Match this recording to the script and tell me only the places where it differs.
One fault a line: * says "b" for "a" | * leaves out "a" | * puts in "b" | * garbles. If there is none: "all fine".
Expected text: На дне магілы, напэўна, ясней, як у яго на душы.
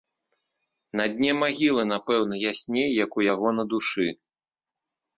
all fine